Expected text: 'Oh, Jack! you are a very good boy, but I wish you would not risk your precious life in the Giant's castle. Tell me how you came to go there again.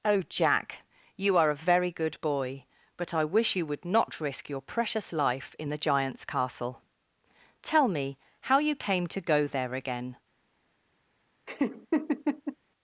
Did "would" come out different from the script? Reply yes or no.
no